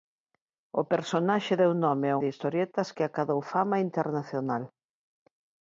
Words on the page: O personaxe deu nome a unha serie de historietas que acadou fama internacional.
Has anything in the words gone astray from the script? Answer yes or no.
yes